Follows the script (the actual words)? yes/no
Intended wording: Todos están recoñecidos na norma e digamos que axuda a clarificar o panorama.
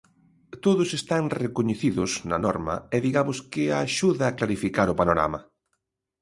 yes